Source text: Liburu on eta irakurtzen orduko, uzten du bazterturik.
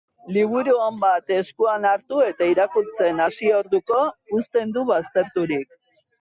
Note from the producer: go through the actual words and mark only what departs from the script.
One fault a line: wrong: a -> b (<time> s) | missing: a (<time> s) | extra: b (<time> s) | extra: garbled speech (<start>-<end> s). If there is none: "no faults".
extra: bat eskuan hartu (1.0 s)
extra: hasi (3.3 s)